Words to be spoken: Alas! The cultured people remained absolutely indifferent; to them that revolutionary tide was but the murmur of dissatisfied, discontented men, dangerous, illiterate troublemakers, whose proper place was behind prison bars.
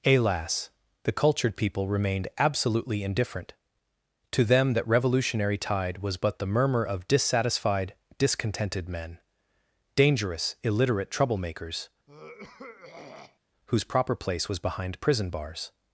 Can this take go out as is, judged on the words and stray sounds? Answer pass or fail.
fail